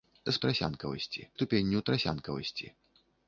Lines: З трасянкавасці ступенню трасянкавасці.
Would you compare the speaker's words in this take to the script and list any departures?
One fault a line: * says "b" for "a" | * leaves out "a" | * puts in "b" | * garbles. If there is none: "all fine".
all fine